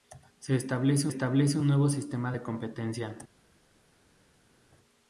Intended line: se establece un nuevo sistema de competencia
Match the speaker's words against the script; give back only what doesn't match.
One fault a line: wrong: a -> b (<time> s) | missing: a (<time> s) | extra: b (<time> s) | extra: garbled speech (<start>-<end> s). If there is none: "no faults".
extra: establece (1.1 s)